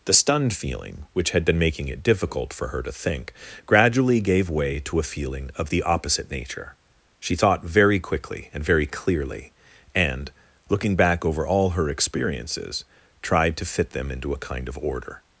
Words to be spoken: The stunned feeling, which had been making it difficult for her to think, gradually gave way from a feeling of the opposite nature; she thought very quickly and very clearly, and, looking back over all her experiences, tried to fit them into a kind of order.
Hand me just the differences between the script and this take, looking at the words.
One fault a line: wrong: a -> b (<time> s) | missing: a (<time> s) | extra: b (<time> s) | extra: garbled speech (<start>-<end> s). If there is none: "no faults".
wrong: from -> to (4.8 s)